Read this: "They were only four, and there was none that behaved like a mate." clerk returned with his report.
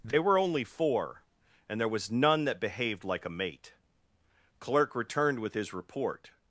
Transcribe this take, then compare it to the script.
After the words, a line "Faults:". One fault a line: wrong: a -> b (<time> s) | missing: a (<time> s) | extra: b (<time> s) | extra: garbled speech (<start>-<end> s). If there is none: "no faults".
"They were only four, and there was none that behaved like a mate." clerk returned with his report.
Faults:
no faults